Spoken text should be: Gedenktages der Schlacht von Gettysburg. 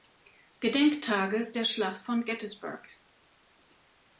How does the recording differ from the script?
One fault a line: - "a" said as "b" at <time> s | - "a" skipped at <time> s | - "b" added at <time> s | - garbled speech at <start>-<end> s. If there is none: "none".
none